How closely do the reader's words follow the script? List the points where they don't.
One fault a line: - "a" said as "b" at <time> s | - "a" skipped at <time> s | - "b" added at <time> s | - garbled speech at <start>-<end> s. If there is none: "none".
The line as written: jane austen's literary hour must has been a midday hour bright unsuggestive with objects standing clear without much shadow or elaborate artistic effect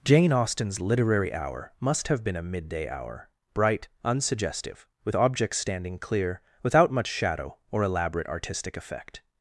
- "has" said as "have" at 2.1 s